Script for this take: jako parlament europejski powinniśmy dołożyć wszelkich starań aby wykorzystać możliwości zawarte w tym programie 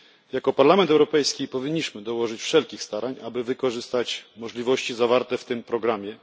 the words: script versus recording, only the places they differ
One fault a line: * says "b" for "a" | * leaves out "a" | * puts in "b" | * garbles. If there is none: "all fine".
all fine